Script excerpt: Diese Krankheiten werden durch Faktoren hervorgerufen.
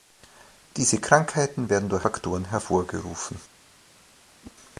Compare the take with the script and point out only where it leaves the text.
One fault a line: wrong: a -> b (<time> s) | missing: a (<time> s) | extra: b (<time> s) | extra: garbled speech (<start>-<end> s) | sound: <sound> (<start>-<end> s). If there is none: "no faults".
sound: whoosh (4.4-4.6 s)